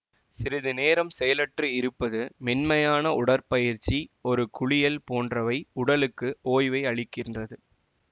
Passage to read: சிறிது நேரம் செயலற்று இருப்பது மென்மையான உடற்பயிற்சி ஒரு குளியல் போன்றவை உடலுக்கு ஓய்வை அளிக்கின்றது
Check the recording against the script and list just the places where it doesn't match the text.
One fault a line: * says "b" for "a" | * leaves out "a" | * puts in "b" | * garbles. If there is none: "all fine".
all fine